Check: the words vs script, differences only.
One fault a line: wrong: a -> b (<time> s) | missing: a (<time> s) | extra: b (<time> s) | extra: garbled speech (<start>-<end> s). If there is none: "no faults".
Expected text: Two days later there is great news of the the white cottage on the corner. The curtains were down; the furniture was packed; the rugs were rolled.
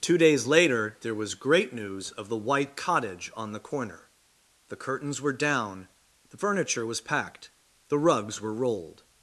wrong: is -> was (1.1 s)
missing: the (2.4 s)